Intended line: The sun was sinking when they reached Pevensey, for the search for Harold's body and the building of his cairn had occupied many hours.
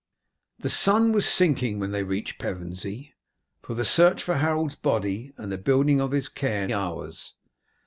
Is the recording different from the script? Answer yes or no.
yes